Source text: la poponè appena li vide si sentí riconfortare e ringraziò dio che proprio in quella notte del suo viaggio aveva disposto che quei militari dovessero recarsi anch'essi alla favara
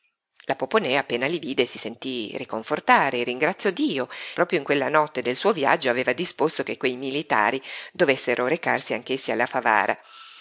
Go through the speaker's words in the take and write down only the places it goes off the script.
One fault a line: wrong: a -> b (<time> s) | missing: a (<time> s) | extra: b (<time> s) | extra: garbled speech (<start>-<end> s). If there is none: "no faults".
missing: che (4.1 s)